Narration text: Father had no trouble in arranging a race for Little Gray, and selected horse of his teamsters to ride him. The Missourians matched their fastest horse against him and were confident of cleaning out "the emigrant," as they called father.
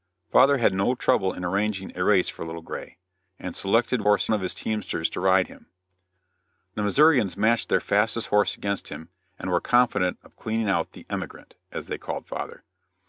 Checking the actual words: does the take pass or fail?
pass